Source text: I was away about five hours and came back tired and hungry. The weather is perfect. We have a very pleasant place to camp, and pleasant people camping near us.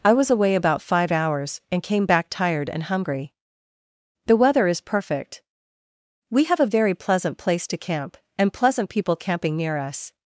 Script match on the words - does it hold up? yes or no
yes